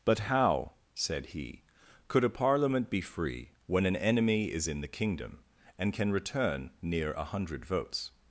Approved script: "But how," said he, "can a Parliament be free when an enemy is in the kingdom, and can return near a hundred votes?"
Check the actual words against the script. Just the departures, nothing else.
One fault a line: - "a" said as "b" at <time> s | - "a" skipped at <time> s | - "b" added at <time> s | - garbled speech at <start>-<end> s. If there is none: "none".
- "can" said as "could" at 2.1 s